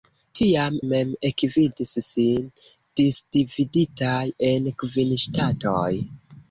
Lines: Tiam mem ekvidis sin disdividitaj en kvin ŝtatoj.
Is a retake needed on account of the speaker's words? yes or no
no